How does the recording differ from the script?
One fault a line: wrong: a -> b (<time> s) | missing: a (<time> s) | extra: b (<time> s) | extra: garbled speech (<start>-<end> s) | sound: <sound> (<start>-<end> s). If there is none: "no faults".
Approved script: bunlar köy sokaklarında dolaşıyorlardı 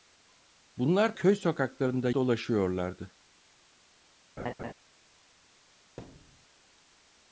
sound: laugh (4.4-4.7 s)
sound: thud (6.0-6.5 s)